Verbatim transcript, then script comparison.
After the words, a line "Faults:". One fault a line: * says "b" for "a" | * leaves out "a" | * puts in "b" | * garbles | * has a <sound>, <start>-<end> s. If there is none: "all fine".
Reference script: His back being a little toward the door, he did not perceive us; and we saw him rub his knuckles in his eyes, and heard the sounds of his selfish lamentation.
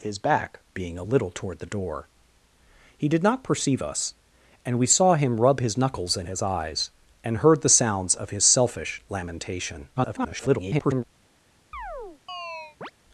His back being a little toward the door, he did not perceive us; and we saw him rub his knuckles in his eyes, and heard the sounds of his selfish lamentation. [garbled]
Faults:
* garbles
* has a chirp, 11.7-12.9 s